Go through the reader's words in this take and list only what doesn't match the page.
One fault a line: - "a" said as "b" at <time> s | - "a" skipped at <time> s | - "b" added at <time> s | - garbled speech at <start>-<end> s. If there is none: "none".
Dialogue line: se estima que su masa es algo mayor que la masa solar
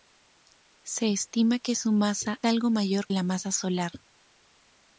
- "es" skipped at 2.4 s
- "que" skipped at 3.1 s